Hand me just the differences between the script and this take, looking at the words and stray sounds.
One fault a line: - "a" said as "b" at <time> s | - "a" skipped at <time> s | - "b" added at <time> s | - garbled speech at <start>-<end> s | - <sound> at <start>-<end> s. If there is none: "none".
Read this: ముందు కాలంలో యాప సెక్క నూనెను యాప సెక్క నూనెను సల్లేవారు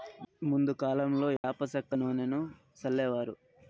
- dropout at 1.4-1.4 s
- "యాప సెక్క నూనెను" skipped at 2.4 s